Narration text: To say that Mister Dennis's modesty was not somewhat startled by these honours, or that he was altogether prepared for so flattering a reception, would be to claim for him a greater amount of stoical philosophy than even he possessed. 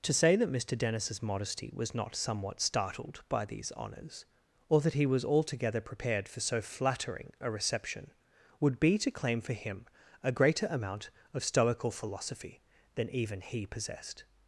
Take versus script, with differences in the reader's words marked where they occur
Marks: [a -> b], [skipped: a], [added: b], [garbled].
To say that Mister Dennis's modesty was not somewhat startled by these honours, or that he was altogether prepared for so flattering a reception, would be to claim for him a greater amount of stoical philosophy than even he possessed.